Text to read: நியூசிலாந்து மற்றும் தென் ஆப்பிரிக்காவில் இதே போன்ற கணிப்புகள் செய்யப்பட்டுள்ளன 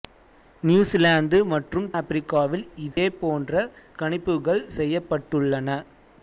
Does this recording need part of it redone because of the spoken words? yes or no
yes